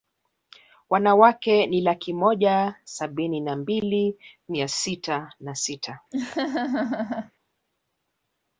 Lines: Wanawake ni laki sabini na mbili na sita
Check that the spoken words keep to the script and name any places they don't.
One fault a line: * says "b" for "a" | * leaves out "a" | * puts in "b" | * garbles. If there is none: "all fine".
* puts in "moja"
* puts in "mia sita"